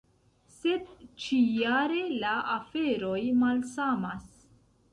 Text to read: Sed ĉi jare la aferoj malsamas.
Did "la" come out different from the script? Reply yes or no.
no